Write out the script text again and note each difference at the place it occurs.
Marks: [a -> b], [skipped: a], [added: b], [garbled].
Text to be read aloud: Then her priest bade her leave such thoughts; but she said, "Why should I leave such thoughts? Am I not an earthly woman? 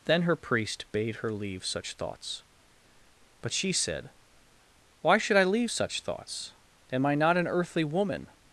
Then her priest bade her leave such thoughts; but she said, "Why should I leave such thoughts? Am I not an earthly woman?